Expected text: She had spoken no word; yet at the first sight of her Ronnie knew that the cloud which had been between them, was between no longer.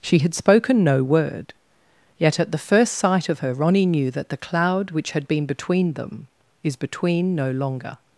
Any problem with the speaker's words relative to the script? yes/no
yes